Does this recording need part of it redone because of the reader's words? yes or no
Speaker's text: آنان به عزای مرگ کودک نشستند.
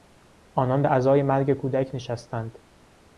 no